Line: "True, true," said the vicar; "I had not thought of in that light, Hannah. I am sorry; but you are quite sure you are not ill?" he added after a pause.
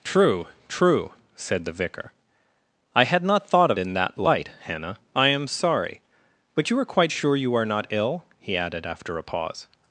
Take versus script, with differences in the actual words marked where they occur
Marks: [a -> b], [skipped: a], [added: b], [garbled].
"True, true," said the vicar; "I had not thought of in that light, Hannah. I am sorry; but you are quite sure you are not ill?" he added after a pause.